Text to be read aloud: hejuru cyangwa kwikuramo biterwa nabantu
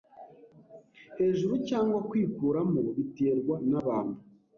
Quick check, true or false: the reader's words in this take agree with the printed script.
true